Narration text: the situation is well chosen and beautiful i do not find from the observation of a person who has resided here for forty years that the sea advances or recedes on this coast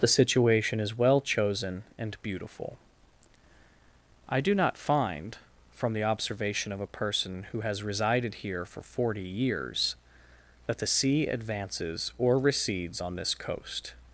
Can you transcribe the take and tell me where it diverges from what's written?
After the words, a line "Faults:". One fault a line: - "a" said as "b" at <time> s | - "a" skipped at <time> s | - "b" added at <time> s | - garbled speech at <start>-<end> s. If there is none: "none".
the situation is well chosen and beautiful i do not find from the observation of a person who has resided here for forty years that the sea advances or recedes on this coast
Faults:
none